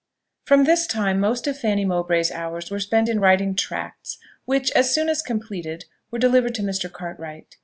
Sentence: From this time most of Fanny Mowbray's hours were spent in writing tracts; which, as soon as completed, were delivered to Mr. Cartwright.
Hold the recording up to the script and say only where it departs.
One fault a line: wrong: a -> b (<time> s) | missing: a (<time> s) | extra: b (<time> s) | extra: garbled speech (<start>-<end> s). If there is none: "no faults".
no faults